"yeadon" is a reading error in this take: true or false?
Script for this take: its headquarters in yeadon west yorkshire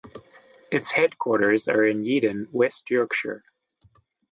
false